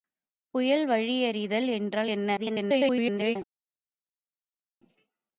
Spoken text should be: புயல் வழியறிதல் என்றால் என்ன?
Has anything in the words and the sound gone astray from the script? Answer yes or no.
yes